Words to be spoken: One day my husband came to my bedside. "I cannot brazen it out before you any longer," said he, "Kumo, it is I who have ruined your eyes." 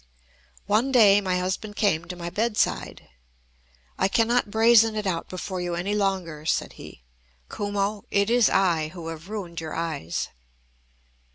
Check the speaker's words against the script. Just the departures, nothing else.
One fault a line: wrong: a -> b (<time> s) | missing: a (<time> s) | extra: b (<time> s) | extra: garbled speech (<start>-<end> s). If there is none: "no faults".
no faults